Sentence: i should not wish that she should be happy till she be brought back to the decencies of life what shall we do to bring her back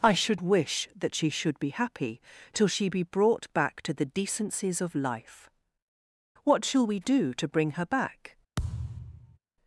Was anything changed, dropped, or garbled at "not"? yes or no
yes